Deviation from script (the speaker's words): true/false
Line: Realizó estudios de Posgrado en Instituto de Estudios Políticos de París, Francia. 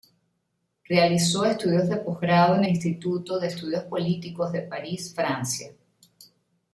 false